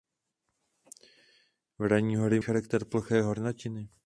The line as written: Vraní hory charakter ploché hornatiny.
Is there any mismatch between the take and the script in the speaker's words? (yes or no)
no